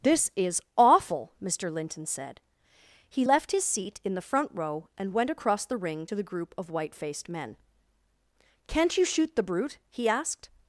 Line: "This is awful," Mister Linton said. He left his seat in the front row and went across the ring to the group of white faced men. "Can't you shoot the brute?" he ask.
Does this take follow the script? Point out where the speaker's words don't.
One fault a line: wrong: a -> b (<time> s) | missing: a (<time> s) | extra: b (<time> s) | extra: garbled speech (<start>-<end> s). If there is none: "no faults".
wrong: ask -> asked (10.1 s)